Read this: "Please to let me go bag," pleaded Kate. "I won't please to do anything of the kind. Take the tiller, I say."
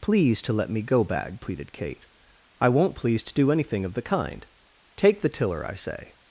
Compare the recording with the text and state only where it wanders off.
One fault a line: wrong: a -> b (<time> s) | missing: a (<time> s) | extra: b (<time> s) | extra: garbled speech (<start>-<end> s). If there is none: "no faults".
no faults